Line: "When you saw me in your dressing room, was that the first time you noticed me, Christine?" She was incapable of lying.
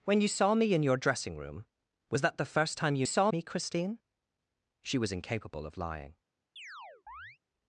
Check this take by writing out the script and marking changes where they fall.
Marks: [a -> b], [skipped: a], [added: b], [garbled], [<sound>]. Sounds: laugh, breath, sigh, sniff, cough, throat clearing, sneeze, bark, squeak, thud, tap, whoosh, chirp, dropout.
"When you saw me in your dressing room, was that the first time you [noticed -> saw] me, Christine?" She was incapable of lying. [chirp]